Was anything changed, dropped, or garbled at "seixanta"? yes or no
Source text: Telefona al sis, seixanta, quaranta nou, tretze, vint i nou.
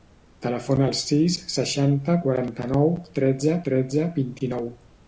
no